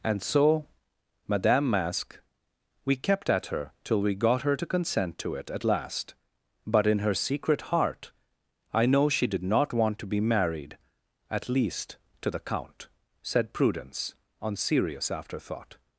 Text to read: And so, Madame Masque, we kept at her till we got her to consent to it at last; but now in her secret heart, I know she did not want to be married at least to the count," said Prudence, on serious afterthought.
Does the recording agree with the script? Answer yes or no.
no